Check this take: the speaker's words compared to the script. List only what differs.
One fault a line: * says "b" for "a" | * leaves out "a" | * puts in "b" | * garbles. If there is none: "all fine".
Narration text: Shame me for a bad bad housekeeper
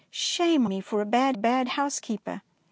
all fine